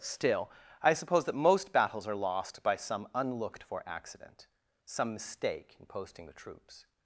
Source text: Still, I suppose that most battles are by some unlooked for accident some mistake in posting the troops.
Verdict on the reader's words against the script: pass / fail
fail